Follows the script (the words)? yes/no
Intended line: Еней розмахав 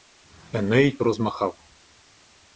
yes